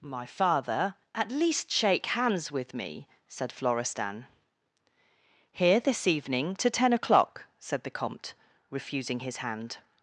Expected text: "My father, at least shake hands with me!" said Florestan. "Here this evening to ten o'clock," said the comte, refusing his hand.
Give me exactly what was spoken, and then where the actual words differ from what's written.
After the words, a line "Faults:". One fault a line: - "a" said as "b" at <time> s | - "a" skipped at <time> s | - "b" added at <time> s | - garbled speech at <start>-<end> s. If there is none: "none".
"My father, at least shake hands with me!" said Florestan. "Here this evening to ten o'clock," said the comte, refusing his hand.
Faults:
none